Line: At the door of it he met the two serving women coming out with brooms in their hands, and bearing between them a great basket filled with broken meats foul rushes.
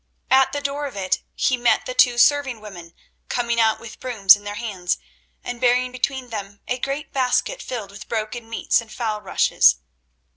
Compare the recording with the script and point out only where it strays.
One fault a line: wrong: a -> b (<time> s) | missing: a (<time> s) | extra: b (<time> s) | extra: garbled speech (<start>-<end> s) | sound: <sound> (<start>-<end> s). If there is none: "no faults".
extra: and (8.8 s)